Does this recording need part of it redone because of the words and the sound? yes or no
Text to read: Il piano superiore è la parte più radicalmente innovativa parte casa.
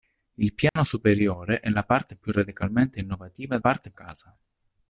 yes